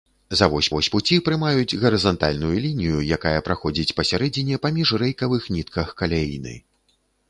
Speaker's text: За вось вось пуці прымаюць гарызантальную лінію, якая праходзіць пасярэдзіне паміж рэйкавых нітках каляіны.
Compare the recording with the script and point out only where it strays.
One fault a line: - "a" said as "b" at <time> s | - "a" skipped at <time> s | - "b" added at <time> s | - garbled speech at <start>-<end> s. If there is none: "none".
none